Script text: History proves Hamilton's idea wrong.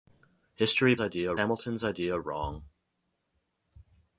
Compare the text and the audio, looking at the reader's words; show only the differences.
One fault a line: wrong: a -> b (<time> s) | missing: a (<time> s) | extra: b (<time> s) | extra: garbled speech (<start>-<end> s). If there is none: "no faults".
wrong: proves -> idea (1.0 s)